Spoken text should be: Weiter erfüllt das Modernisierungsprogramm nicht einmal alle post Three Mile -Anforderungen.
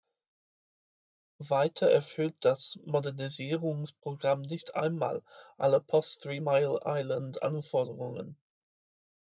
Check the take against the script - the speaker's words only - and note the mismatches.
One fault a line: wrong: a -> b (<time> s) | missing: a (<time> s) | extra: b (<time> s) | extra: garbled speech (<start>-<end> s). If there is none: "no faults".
extra: Island (6.8 s)